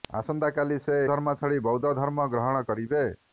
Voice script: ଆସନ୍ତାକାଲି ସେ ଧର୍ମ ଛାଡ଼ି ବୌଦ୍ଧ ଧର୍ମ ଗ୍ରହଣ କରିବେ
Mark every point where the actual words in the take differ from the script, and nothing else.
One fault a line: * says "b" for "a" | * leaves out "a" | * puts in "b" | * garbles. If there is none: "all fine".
all fine